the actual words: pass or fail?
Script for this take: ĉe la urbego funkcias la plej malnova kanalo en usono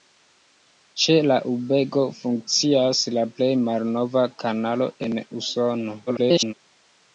fail